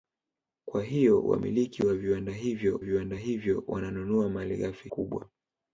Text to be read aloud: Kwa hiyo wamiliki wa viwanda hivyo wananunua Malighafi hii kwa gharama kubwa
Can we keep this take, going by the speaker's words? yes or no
no